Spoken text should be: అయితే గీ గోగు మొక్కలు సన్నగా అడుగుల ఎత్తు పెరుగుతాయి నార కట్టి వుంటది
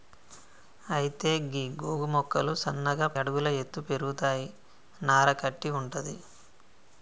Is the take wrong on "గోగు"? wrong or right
right